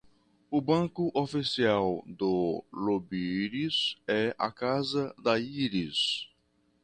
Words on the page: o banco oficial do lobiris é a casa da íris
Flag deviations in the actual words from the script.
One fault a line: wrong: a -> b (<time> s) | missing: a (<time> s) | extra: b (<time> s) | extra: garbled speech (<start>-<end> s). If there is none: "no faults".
no faults